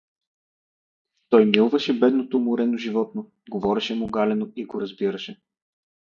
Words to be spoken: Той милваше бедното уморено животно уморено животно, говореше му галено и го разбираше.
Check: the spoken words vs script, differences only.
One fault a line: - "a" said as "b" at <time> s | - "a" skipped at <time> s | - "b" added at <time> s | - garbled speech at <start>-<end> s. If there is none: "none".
- "уморено животно" skipped at 3.3 s